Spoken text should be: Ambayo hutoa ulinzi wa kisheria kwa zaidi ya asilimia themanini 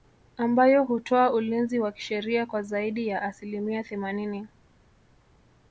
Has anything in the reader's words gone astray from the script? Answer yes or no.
no